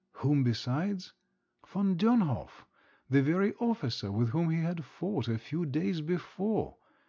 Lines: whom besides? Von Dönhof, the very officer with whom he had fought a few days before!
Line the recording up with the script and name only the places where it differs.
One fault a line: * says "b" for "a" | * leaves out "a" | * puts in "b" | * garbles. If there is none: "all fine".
all fine